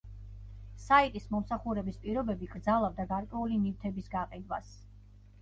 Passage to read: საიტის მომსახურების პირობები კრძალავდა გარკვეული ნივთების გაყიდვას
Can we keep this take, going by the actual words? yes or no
yes